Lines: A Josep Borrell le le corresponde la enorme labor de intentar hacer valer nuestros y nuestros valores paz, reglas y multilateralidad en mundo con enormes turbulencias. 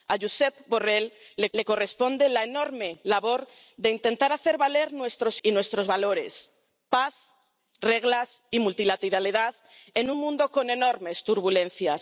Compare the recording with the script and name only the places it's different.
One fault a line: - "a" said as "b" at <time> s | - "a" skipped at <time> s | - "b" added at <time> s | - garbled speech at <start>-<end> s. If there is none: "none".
none